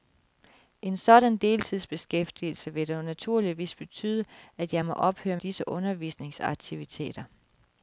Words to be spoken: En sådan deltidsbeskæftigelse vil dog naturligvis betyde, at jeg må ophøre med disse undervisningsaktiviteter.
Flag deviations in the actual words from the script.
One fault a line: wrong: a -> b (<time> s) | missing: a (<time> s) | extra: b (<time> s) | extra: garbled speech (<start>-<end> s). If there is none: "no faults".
missing: med (5.4 s)